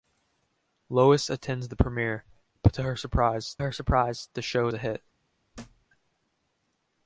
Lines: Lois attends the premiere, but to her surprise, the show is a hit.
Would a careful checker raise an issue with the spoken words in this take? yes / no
yes